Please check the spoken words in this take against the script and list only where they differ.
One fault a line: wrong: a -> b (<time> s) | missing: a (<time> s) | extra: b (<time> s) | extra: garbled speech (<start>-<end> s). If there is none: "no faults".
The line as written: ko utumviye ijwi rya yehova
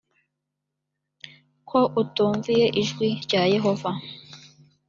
no faults